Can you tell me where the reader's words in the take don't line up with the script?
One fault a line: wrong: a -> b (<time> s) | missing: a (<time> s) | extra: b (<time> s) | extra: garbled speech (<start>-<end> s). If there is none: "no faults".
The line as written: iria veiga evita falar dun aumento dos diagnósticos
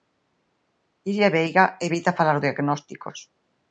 missing: dun aumento dos (2.4 s)